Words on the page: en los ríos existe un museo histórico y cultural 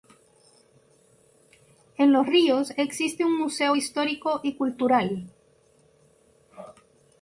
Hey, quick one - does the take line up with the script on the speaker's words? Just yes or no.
yes